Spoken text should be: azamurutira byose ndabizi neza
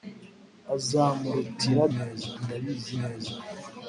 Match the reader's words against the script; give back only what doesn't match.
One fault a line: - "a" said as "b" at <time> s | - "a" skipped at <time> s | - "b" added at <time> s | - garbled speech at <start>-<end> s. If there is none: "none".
- "byose" said as "neza" at 2.0 s